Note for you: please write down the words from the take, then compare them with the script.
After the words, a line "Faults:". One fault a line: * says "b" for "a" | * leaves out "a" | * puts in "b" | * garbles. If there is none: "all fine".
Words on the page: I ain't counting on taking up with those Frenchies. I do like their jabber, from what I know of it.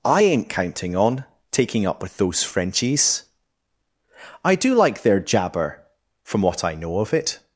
I ain't counting on taking up with those Frenchies. I do like their jabber, from what I know of it.
Faults:
all fine